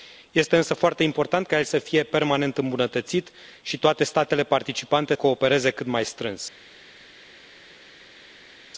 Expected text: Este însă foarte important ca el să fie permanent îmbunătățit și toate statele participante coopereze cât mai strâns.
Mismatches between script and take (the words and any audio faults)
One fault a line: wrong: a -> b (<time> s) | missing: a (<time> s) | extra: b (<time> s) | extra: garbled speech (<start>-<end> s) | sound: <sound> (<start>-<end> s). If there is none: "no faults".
no faults